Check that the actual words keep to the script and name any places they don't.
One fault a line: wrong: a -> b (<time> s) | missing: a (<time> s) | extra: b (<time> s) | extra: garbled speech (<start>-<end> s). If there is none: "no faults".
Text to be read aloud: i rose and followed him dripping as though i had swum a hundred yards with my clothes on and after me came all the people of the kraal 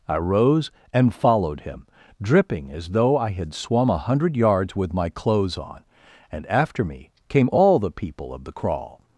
no faults